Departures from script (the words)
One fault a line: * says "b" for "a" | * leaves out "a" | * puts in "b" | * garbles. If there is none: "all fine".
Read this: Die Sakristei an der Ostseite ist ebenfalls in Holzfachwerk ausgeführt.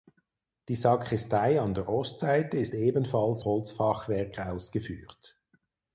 * leaves out "in"